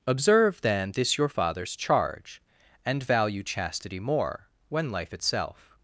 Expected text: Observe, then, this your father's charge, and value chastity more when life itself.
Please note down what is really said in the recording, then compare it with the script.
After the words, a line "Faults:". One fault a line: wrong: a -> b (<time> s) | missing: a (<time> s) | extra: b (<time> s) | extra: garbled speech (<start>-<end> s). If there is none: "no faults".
Observe, then, this your father's charge, and value chastity more when life itself.
Faults:
no faults